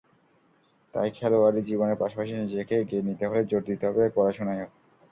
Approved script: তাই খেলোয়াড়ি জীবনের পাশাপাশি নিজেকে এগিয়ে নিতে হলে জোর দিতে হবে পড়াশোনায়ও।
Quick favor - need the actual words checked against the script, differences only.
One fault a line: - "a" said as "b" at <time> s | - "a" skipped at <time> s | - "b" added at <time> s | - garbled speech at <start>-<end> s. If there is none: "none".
none